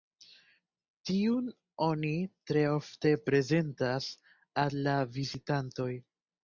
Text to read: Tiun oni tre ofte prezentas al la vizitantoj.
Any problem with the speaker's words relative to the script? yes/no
no